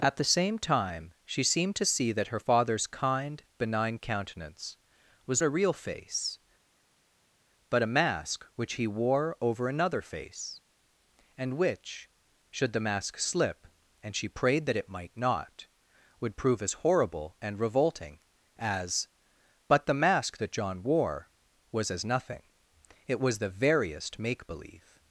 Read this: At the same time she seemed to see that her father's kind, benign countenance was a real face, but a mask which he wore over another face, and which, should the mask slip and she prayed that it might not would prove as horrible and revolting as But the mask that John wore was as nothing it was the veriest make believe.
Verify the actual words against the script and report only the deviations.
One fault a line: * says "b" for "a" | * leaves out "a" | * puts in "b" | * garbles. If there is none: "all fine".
all fine